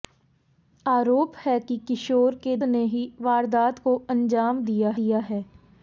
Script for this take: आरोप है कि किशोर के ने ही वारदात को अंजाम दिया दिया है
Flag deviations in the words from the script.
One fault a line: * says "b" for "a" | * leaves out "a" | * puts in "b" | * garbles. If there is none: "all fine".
all fine